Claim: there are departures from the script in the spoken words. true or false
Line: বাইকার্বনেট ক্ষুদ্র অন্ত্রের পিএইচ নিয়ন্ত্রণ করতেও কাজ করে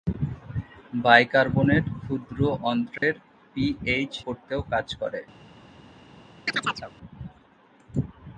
true